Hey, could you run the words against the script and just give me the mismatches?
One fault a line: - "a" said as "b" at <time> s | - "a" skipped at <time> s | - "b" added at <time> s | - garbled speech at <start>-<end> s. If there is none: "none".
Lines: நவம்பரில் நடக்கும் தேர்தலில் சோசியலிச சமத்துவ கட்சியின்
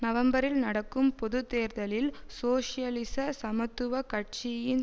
- "பொது" added at 1.1 s